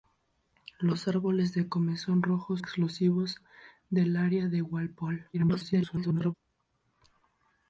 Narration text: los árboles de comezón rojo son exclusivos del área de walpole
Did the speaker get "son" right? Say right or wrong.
wrong